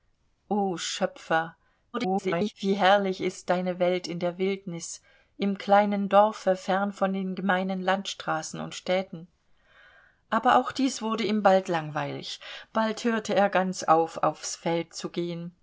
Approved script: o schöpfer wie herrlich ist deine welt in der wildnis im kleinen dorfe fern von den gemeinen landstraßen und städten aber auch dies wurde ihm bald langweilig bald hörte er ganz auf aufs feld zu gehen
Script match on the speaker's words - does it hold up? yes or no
no